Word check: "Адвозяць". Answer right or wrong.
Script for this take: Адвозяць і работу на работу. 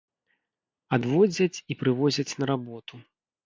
right